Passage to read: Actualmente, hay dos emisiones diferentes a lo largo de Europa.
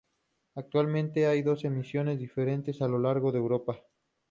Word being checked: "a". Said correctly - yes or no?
yes